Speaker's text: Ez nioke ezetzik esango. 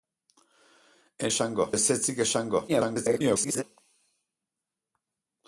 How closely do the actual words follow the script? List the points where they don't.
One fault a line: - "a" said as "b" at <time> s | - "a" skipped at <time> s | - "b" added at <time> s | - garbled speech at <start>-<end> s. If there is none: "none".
- "nioke" said as "esango" at 1.3 s
- garbled speech at 2.7-3.6 s